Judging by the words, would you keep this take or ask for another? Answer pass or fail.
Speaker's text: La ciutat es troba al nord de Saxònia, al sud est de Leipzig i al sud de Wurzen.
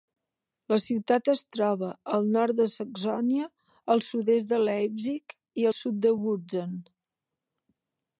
pass